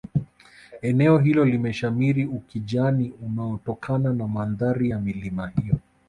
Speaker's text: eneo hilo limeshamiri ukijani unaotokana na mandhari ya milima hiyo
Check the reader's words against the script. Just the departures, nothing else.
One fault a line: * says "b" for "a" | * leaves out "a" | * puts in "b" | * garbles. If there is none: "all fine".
all fine